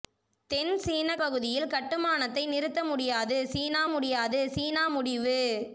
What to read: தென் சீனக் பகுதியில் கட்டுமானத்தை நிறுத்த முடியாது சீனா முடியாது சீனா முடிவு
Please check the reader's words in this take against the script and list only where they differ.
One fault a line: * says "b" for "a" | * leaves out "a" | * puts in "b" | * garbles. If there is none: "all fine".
all fine